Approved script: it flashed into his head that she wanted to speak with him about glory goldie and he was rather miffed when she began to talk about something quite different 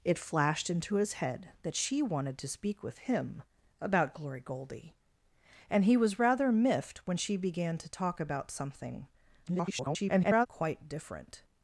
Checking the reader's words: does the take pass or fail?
fail